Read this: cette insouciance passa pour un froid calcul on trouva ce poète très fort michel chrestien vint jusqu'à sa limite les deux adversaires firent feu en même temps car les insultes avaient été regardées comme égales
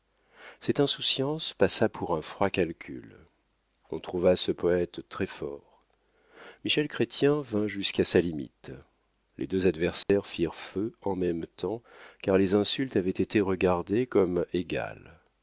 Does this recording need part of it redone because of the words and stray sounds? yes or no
yes